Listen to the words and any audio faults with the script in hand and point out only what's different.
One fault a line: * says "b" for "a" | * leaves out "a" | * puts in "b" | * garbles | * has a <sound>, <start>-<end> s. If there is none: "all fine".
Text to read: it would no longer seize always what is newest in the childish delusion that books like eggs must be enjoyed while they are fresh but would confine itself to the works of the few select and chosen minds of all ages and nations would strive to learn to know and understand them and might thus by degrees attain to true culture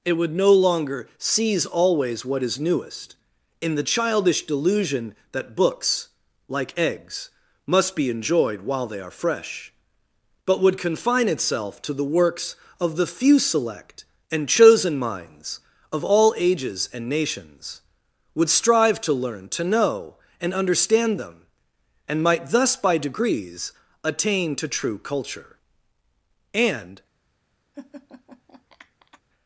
* puts in "and"
* has a laugh, 27.7-29.2 s